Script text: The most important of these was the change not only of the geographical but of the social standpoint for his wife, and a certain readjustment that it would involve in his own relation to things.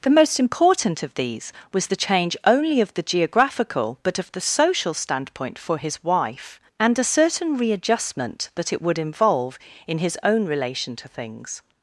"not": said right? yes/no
no